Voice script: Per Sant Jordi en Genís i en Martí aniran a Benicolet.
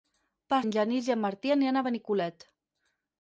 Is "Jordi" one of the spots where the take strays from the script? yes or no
yes